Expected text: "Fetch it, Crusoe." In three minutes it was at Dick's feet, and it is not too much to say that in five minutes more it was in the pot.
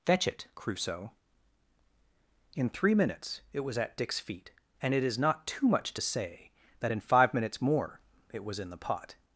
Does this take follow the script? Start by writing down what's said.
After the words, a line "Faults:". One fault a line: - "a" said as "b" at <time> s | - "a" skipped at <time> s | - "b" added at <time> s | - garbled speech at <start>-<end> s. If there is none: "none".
"Fetch it, Crusoe." In three minutes it was at Dick's feet, and it is not too much to say that in five minutes more it was in the pot.
Faults:
none